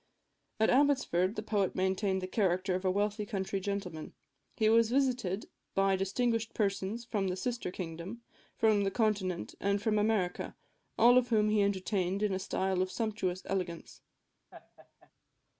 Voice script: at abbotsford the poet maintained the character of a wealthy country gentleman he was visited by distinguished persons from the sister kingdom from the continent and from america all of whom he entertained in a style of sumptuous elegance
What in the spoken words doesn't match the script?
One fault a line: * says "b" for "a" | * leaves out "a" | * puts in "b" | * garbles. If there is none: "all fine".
all fine